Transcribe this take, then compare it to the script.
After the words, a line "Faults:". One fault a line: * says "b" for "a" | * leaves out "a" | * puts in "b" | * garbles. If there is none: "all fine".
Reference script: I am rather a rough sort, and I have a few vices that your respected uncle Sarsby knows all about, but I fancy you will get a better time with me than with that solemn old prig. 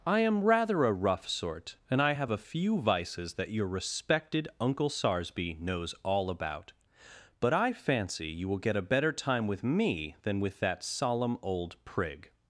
I am rather a rough sort, and I have a few vices that your respected uncle Sarsby knows all about, but I fancy you will get a better time with me than with that solemn old prig.
Faults:
all fine